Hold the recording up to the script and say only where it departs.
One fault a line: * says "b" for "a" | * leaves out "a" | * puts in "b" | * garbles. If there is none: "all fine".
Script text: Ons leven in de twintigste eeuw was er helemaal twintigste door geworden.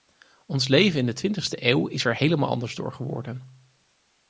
* says "is" for "was"
* says "anders" for "twintigste"